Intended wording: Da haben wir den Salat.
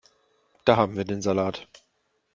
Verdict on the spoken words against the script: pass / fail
pass